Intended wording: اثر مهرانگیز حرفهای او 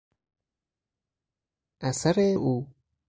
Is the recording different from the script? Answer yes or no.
yes